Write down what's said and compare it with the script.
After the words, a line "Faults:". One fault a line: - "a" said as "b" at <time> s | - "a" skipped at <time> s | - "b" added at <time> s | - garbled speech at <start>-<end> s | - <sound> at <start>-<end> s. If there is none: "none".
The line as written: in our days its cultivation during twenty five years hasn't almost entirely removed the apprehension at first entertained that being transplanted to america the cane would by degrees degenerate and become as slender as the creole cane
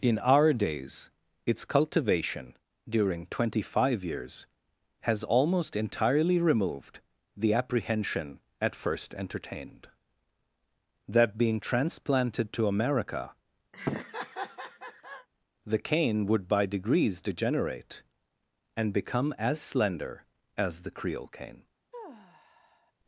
in our days its cultivation during twenty five years has almost entirely removed the apprehension at first entertained that being transplanted to america the cane would by degrees degenerate and become as slender as the creole cane
Faults:
- "hasn't" said as "has" at 5.0 s
- laugh at 13.7-15.3 s
- sigh at 21.9-22.9 s